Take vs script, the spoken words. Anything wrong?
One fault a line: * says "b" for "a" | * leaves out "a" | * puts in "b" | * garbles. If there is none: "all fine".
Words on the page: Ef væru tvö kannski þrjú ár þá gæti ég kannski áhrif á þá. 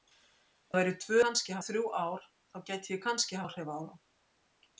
all fine